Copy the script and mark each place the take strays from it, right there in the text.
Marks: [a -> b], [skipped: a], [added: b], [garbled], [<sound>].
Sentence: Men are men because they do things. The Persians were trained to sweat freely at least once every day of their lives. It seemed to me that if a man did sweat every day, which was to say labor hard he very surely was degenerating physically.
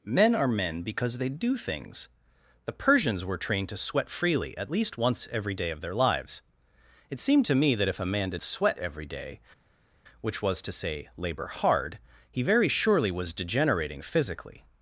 Men are men because they do things. The Persians were trained to sweat freely at least once every day of their lives. It seemed to me that if a man did sweat every day, which was to say labor hard he very surely was degenerating physically.